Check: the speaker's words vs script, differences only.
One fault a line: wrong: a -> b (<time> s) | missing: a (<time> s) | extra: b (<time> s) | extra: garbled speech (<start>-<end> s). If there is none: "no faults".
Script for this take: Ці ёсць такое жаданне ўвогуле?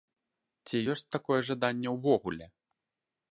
no faults